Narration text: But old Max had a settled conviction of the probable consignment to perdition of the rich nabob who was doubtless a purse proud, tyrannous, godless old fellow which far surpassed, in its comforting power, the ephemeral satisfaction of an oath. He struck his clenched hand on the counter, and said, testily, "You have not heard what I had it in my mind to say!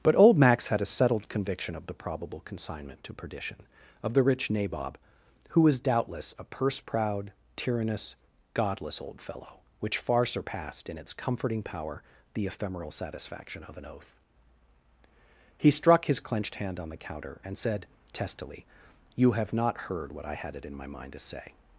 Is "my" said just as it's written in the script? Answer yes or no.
yes